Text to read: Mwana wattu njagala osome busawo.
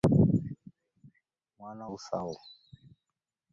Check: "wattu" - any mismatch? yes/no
yes